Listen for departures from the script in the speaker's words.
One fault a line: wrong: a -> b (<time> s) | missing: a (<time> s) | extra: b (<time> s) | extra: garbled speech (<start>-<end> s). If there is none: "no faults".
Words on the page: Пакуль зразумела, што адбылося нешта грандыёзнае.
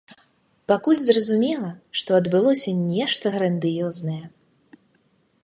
no faults